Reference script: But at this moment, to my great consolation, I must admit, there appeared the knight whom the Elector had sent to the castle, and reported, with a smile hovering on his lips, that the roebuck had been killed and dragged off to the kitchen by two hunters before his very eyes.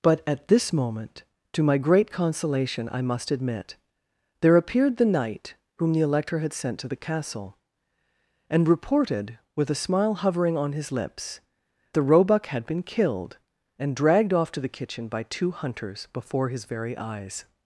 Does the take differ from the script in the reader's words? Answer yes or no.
yes